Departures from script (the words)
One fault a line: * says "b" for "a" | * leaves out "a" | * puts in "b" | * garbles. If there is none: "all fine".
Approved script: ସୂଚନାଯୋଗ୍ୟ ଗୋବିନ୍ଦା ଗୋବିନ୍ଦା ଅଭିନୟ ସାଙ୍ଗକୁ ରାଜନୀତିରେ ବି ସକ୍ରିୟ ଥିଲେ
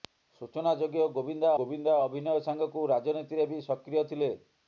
all fine